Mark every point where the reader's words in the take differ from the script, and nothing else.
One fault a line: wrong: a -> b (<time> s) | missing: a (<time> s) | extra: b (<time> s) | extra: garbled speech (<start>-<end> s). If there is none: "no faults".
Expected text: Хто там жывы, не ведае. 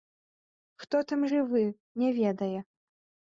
no faults